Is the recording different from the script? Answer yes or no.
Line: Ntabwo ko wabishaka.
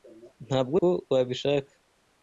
no